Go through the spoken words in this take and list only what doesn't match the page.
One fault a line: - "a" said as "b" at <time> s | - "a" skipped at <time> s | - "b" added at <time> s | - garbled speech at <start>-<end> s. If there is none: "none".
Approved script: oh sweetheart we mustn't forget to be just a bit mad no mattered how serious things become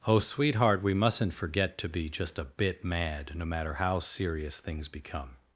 - "mattered" said as "matter" at 3.5 s